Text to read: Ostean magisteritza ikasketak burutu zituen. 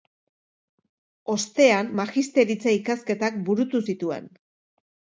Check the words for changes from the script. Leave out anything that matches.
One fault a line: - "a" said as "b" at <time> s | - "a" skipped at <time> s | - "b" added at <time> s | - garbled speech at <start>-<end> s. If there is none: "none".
none